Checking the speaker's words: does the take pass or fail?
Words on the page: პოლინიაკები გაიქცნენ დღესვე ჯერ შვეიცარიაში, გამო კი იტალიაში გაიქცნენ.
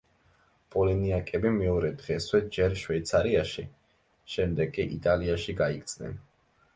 fail